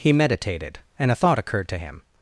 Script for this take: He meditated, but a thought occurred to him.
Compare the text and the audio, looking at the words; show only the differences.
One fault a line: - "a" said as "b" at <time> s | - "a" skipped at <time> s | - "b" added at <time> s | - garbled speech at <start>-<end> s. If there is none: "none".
- "but" said as "and" at 1.0 s